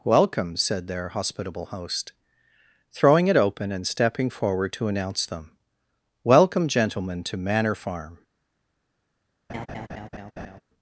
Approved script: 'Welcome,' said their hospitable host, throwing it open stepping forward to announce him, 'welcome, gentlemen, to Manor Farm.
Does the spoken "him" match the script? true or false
false